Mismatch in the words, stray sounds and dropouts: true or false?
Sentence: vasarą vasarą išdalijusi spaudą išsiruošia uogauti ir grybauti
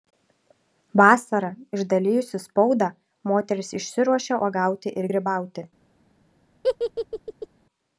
true